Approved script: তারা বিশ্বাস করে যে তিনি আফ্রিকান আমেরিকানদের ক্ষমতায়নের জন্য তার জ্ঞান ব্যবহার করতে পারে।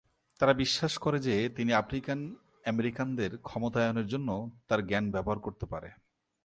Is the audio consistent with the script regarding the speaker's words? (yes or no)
yes